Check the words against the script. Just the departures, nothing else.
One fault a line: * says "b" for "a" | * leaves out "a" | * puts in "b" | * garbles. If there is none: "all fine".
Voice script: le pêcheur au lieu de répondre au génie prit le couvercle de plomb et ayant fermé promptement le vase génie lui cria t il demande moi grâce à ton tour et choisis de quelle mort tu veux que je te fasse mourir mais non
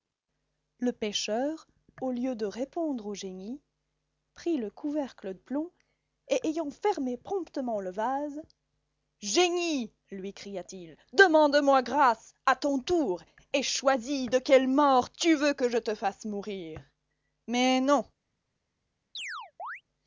* leaves out "de"